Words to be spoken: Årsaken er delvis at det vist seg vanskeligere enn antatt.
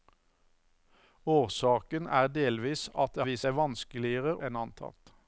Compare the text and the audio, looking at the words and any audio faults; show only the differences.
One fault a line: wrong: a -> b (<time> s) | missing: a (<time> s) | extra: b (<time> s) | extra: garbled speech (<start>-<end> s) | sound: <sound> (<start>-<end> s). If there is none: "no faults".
no faults